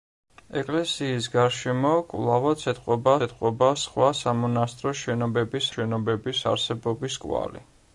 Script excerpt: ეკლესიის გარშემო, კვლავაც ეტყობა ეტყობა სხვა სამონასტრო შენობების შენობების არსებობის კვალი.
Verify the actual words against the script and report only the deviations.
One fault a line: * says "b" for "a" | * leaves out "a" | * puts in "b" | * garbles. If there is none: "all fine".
all fine